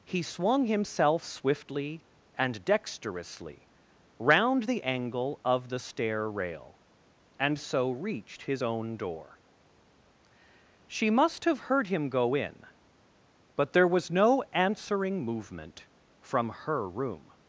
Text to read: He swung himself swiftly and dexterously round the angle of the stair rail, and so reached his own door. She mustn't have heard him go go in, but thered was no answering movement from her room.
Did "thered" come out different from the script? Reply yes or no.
yes